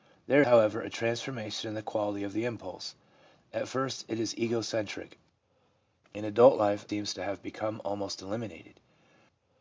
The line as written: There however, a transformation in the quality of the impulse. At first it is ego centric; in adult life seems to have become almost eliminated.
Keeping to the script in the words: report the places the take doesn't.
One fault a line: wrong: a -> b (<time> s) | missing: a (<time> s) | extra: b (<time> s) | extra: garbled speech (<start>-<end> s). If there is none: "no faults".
no faults